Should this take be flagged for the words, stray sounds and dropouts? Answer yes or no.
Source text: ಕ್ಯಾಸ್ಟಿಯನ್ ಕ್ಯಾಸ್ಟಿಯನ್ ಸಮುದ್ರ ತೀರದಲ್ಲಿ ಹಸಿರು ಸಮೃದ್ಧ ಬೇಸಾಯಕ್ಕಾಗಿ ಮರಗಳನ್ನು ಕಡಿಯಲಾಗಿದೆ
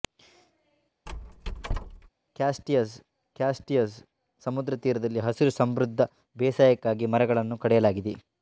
yes